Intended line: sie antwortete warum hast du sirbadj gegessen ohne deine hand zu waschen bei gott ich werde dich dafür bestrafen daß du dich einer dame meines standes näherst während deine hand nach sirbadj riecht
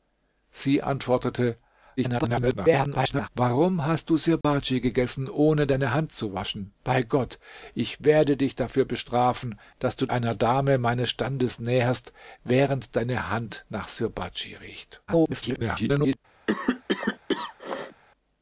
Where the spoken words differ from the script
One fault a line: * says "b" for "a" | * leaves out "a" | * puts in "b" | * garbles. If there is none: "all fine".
* garbles
* leaves out "dich"
* garbles